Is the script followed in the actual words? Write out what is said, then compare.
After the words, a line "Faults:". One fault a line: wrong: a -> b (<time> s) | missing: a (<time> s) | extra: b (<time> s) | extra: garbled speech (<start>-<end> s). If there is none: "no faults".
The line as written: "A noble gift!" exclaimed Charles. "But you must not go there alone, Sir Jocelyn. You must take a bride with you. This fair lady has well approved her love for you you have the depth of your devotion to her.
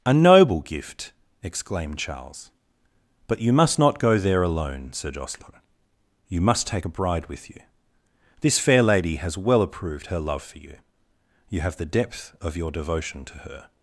"A noble gift!" exclaimed Charles. "But you must not go there alone, Sir Jocelyn. You must take a bride with you. This fair lady has well approved her love for you you have the depth of your devotion to her.
Faults:
no faults